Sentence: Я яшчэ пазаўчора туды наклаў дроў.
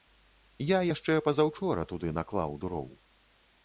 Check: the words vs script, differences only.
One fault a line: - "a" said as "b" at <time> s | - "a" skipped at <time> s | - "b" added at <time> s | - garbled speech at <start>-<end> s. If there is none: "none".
none